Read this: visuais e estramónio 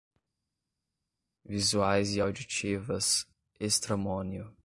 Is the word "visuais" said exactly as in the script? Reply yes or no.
yes